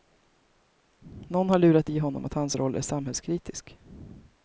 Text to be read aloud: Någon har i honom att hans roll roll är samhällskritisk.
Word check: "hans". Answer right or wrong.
right